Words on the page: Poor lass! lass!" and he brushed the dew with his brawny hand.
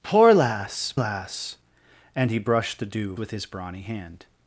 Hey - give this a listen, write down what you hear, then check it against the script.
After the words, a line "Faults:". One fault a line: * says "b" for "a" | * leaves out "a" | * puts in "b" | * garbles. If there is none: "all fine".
Poor lass! lass!" and he brushed the dew with his brawny hand.
Faults:
all fine